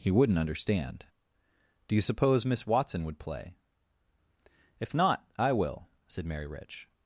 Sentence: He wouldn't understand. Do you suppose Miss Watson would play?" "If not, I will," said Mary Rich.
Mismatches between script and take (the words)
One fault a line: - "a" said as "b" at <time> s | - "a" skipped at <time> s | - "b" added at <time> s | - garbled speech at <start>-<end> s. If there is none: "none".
none